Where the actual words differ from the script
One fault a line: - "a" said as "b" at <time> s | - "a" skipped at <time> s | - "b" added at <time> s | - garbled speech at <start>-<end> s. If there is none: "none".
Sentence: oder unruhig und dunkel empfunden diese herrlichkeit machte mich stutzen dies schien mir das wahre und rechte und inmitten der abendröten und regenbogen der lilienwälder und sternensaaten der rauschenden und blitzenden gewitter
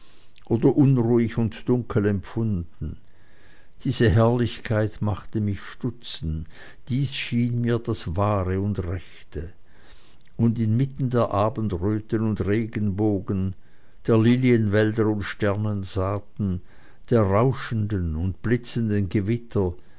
none